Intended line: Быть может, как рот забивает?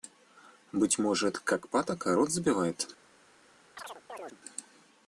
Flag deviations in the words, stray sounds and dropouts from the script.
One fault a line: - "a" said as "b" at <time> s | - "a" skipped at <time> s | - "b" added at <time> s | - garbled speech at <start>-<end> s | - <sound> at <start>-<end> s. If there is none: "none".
- "патока" added at 1.7 s
- chirp at 3.8-4.4 s